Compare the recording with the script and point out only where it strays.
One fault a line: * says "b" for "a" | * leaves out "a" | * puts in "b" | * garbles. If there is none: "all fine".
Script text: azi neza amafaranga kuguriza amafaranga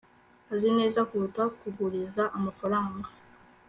* says "kuruta" for "amafaranga"